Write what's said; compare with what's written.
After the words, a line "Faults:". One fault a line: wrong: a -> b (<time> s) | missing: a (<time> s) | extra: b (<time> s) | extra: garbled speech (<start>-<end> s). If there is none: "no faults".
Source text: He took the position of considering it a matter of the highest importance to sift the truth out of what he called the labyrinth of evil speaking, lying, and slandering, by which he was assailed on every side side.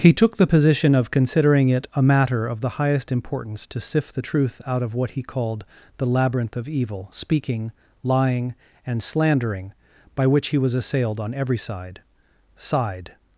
He took the position of considering it a matter of the highest importance to sift the truth out of what he called the labyrinth of evil speaking, lying, and slandering, by which he was assailed on every side side.
Faults:
no faults